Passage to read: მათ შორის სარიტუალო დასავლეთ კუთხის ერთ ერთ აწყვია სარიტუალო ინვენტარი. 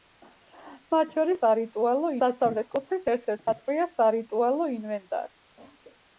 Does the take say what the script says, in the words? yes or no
yes